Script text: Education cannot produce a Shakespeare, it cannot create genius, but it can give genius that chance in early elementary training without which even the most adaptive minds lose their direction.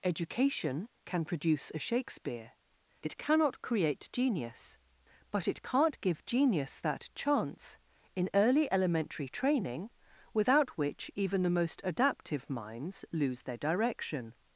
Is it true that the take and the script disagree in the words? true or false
true